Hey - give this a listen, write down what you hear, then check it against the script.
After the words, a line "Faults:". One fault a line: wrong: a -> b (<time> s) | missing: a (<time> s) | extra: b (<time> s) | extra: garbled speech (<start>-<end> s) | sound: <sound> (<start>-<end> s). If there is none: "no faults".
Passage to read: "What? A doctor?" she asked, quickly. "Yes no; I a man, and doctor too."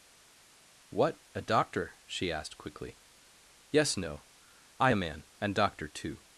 "What? A doctor?" she asked, quickly. "Yes no; I a man, and doctor too."
Faults:
no faults